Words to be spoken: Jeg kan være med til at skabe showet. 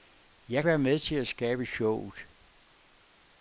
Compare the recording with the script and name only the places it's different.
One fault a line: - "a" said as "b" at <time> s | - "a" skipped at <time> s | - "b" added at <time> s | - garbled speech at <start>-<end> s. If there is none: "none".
- "kan" skipped at 0.7 s